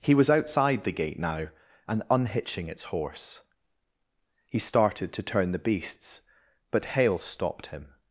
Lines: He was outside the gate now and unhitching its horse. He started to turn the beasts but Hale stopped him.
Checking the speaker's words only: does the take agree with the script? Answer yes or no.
yes